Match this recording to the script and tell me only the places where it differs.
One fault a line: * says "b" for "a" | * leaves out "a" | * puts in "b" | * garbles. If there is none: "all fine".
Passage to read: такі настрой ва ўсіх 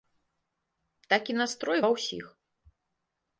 all fine